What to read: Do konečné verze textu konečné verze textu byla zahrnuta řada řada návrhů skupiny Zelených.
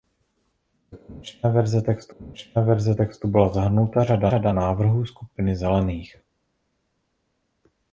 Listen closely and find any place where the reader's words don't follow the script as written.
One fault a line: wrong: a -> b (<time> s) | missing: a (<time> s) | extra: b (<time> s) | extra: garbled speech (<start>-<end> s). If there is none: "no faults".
no faults